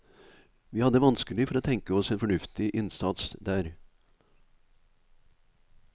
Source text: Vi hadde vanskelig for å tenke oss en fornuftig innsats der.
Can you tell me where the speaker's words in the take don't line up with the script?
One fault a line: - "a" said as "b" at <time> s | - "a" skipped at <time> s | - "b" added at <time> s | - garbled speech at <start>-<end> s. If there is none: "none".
none